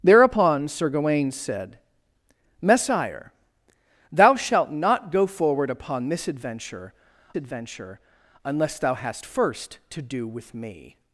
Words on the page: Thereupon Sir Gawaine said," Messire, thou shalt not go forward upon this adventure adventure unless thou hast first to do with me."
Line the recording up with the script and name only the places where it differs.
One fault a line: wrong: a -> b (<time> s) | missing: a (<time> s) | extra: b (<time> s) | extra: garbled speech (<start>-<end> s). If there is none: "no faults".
no faults